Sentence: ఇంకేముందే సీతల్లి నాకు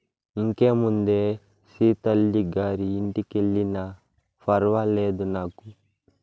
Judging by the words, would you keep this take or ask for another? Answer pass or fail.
fail